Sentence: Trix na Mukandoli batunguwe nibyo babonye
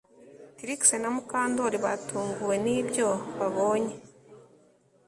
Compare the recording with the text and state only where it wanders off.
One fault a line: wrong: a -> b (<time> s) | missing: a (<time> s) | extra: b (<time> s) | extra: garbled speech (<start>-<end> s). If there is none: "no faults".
no faults